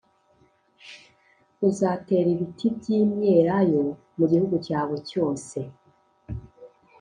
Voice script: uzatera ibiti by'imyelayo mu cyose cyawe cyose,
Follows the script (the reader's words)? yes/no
no